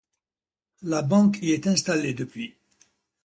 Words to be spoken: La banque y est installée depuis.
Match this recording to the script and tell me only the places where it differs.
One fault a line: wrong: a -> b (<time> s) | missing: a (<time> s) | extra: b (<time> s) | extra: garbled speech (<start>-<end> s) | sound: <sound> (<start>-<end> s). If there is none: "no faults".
no faults